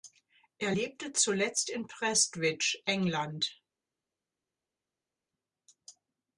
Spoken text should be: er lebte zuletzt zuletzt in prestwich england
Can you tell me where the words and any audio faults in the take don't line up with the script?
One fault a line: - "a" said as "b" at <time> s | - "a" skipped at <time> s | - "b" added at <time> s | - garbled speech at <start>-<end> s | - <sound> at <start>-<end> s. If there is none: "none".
- "zuletzt" skipped at 1.7 s